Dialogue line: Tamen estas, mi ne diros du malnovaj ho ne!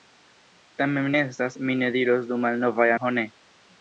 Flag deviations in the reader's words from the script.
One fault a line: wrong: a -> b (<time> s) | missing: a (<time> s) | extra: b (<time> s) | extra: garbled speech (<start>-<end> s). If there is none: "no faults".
no faults